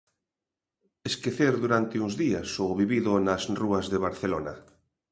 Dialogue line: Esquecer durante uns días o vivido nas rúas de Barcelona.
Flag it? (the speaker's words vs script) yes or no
no